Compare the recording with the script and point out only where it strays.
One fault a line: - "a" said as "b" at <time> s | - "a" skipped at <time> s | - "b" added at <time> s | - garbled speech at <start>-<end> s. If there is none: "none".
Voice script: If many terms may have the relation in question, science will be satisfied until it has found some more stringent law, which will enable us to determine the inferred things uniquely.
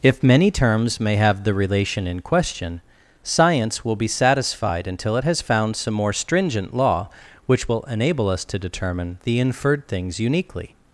none